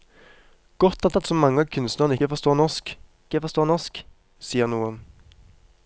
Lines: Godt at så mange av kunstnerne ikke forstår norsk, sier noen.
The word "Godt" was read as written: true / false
true